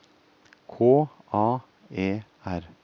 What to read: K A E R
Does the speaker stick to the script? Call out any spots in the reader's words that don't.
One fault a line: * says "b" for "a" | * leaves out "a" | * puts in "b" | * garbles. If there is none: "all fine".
all fine